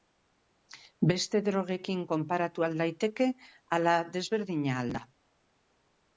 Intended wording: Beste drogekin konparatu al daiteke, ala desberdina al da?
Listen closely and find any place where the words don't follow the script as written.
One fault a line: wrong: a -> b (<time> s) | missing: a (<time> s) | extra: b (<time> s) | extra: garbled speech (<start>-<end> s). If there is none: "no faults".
no faults